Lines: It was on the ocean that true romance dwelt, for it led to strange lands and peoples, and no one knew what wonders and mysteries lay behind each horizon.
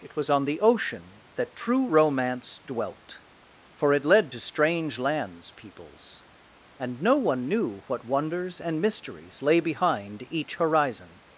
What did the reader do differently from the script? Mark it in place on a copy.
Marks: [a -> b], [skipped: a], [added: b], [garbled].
It was on the ocean that true romance dwelt, for it led to strange lands [skipped: and] peoples, and no one knew what wonders and mysteries lay behind each horizon.